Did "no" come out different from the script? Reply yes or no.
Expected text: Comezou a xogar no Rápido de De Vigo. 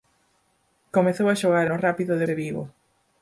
no